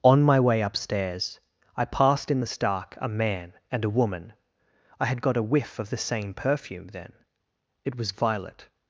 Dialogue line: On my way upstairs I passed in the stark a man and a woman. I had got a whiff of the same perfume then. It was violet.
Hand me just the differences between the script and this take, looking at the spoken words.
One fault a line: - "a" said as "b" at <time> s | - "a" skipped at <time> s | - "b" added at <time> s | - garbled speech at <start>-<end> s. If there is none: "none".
none